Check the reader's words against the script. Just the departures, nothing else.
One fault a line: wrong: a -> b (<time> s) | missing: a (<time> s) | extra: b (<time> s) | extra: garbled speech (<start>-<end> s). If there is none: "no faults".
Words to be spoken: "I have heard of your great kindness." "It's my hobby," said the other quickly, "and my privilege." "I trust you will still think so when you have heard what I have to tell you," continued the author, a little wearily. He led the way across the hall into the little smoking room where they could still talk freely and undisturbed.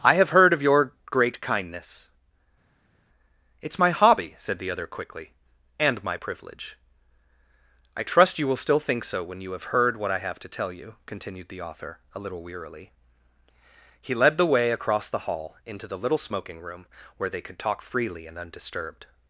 missing: still (17.6 s)